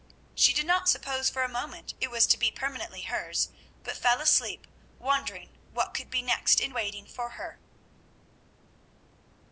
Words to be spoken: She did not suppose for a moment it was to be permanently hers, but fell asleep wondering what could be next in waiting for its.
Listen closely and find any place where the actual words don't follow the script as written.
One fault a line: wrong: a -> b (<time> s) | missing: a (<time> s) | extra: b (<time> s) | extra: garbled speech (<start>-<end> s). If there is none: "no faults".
wrong: its -> her (7.3 s)